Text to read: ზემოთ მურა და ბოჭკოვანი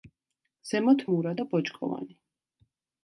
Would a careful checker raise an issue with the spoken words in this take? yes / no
no